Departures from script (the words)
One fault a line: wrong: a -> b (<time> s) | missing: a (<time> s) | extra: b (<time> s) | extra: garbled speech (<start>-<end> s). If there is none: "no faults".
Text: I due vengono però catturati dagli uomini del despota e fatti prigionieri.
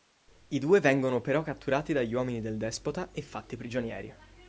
no faults